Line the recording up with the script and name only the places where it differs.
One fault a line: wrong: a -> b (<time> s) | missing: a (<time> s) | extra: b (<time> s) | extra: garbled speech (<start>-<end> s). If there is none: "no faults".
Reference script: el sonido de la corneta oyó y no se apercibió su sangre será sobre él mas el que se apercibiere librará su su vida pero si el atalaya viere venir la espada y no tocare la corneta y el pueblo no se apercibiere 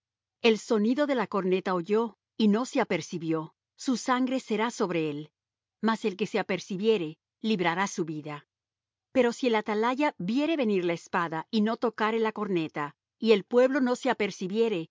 missing: su (8.0 s)